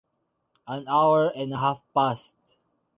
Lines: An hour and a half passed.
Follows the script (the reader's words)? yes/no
yes